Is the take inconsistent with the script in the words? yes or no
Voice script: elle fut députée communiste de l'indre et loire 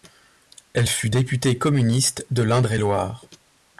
no